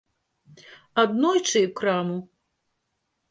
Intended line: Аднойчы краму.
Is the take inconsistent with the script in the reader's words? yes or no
no